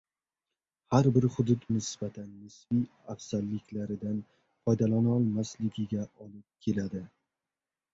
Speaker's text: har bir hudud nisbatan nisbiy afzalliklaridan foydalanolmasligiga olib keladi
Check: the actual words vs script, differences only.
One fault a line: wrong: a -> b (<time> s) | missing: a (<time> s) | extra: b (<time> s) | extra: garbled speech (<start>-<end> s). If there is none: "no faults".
no faults